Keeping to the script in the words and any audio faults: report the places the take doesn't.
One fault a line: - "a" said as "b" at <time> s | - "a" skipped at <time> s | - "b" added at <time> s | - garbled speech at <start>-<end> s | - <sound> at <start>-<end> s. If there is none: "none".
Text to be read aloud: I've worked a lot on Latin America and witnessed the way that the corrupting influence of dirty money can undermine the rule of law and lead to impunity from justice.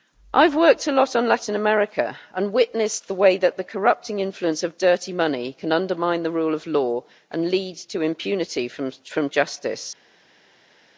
none